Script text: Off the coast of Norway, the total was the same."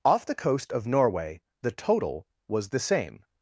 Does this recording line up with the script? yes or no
yes